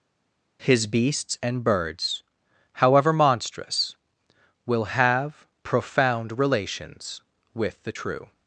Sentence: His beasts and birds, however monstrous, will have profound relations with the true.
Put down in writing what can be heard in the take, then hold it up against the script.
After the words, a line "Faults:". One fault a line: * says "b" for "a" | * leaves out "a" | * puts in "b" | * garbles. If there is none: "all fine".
His beasts and birds, however monstrous, will have profound relations with the true.
Faults:
all fine